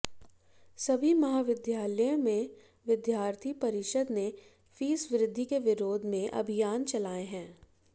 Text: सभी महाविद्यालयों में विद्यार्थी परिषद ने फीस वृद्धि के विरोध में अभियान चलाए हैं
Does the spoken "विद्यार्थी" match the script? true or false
true